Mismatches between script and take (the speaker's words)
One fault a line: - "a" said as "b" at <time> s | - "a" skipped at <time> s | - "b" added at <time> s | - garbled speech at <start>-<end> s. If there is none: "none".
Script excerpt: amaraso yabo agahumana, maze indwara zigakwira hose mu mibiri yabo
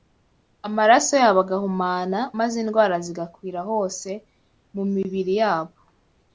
none